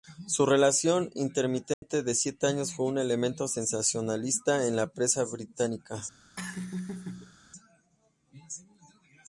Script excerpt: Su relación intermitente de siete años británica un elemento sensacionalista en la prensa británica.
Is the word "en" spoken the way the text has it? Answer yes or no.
yes